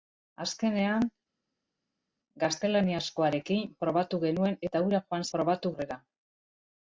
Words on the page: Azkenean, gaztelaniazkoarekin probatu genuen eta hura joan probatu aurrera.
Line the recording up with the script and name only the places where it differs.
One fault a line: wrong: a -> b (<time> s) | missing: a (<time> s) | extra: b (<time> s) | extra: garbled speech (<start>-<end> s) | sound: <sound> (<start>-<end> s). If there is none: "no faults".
no faults